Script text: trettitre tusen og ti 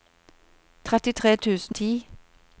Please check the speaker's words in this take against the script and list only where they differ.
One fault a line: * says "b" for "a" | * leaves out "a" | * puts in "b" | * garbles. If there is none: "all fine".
* leaves out "og"